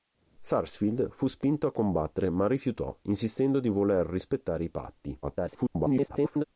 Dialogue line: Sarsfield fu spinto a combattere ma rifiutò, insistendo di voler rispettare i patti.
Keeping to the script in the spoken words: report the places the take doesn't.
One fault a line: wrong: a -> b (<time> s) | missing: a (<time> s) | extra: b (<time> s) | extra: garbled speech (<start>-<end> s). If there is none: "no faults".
extra: garbled speech (5.2-6.4 s)